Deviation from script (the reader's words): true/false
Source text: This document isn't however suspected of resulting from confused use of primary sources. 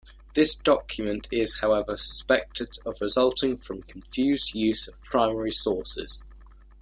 true